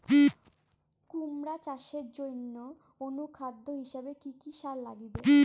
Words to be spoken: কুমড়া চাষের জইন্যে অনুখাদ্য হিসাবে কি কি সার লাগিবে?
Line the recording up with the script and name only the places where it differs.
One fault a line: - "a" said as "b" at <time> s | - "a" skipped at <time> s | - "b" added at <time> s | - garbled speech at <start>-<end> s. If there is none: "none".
none